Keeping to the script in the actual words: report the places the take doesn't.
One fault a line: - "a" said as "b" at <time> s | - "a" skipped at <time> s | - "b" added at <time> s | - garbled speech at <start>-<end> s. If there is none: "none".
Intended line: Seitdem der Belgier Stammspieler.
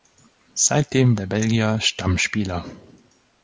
none